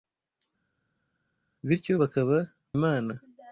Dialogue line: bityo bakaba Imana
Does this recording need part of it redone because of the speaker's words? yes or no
no